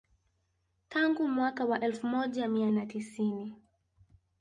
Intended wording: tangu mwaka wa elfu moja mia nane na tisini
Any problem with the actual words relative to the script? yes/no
yes